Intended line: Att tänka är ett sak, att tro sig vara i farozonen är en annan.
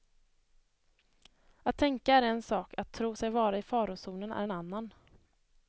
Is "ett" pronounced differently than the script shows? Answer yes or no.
yes